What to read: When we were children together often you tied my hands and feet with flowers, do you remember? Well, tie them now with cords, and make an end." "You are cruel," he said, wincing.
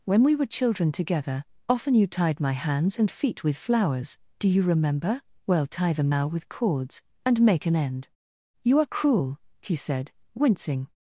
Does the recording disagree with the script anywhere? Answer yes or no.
no